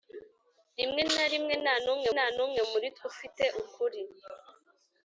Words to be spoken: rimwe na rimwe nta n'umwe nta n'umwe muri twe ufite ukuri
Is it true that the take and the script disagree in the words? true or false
false